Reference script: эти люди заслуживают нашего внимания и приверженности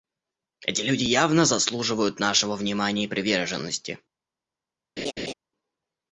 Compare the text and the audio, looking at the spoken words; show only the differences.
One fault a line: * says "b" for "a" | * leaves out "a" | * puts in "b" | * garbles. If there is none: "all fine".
* puts in "явно"